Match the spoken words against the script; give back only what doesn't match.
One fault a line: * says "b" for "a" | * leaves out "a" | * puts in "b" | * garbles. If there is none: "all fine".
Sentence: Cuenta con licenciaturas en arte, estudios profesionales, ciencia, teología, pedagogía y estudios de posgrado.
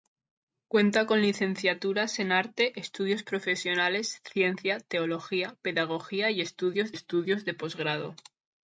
* puts in "estudios"